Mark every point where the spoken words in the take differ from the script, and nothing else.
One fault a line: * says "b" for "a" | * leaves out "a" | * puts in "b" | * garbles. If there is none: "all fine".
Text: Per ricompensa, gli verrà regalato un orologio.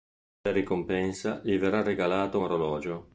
* leaves out "un"